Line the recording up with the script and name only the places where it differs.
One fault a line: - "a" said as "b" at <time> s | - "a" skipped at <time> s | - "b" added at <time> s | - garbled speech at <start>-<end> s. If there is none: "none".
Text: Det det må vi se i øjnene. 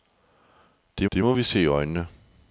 none